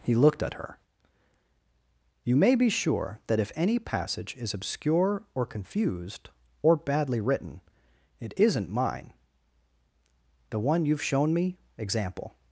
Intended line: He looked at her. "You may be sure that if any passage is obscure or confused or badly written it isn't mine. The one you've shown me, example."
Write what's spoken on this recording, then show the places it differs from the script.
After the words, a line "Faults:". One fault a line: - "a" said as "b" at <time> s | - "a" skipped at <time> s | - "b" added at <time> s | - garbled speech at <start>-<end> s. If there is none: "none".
He looked at her. "You may be sure that if any passage is obscure or confused or badly written it isn't mine. The one you've shown me, example."
Faults:
none